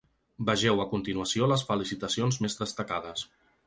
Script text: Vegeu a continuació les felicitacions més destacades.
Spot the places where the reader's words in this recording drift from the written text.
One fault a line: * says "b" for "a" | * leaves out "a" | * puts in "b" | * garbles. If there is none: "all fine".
all fine